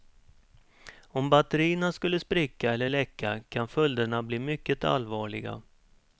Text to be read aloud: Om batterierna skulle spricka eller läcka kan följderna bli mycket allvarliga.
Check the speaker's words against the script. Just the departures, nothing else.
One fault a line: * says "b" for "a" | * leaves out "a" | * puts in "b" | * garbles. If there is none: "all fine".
all fine